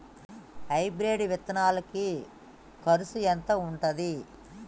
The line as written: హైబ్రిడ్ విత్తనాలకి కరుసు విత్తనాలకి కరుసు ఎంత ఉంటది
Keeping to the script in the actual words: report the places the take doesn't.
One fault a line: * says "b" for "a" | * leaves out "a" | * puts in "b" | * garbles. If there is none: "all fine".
* leaves out "విత్తనాలకి కరుసు"